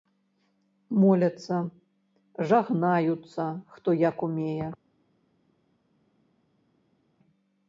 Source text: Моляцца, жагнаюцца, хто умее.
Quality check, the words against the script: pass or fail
fail